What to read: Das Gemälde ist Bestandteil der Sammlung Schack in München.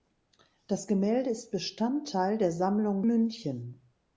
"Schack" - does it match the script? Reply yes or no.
no